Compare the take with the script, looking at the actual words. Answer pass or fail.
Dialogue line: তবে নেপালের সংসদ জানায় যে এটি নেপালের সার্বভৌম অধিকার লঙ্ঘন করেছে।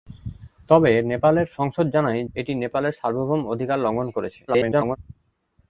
fail